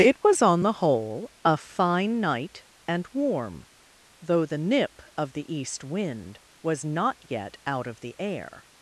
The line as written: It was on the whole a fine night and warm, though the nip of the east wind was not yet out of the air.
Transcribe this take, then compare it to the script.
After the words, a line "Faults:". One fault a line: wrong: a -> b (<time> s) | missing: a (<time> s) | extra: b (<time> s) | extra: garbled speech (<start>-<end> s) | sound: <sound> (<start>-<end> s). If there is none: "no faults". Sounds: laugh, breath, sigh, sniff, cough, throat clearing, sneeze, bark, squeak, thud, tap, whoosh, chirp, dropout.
It was on the whole a fine night and warm, though the nip of the east wind was not yet out of the air.
Faults:
no faults